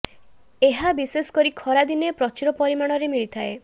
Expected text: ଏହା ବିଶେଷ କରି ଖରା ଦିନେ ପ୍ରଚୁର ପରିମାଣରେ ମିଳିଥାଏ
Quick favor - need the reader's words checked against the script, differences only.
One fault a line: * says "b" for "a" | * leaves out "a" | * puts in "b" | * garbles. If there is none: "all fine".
all fine